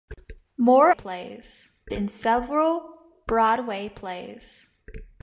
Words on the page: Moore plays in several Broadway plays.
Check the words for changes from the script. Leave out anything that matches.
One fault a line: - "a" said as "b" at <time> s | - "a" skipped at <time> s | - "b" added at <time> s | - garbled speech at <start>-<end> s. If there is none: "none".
none